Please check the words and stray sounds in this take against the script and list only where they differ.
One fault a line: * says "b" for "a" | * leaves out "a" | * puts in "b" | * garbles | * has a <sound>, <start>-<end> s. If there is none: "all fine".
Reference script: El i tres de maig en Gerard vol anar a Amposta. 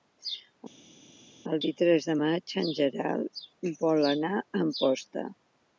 all fine